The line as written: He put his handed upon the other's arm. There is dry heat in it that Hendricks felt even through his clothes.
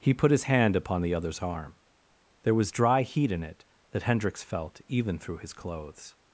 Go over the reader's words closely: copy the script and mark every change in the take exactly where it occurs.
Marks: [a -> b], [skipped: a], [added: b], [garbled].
He put his [handed -> hand] upon the other's arm. There [is -> was] dry heat in it that Hendricks felt even through his clothes.